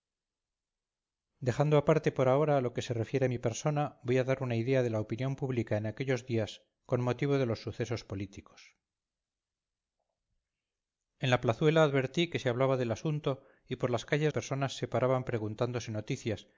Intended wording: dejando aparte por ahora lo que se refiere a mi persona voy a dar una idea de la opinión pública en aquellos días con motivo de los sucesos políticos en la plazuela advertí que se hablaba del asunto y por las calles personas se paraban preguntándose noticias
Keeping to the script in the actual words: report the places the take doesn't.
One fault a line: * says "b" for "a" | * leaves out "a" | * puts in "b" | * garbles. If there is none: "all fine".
all fine